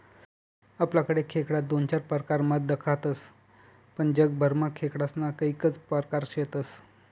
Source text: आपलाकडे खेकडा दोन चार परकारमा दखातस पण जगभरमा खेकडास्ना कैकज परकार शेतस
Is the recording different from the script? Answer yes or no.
no